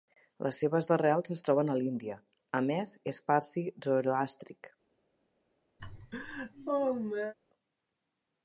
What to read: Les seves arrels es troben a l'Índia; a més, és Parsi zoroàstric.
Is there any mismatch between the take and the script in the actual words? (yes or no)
no